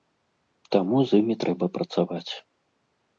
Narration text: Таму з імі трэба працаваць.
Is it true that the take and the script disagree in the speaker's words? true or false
false